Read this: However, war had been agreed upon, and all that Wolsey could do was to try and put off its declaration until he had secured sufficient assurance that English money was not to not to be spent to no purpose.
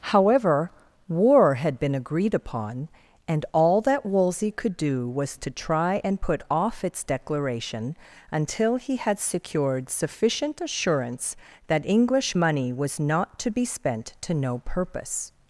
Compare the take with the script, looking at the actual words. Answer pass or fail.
fail